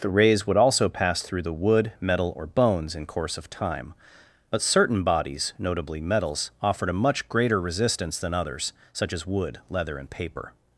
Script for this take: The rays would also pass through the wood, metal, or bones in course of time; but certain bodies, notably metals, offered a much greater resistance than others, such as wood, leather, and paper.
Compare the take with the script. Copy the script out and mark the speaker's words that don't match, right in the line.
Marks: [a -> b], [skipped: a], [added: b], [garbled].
The rays would also pass through the wood, metal, or bones in course of time; but certain bodies, notably metals, offered a much greater resistance than others, such as wood, leather, and paper.